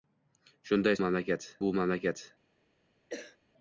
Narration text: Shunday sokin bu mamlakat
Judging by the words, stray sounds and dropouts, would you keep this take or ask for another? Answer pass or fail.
fail